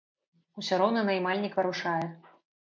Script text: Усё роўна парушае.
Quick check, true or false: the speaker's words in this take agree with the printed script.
false